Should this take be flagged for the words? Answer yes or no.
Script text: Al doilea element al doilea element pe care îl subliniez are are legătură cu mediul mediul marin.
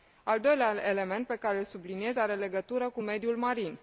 yes